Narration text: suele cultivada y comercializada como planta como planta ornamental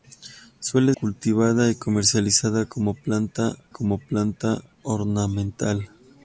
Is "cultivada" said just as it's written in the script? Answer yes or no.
yes